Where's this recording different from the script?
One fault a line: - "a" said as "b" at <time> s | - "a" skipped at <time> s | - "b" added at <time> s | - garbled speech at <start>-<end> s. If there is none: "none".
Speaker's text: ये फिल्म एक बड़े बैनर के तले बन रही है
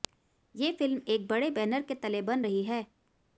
none